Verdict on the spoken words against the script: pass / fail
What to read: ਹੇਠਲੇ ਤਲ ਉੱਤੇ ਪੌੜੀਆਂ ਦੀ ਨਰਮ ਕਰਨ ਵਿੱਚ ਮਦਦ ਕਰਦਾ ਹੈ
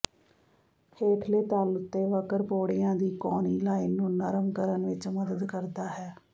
fail